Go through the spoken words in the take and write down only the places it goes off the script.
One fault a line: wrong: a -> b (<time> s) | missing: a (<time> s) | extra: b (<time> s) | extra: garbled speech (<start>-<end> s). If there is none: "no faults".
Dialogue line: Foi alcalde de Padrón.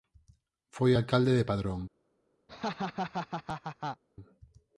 no faults